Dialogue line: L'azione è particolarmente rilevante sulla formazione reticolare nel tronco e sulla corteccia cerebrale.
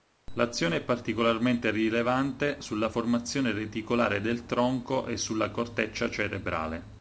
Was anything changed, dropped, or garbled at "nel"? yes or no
yes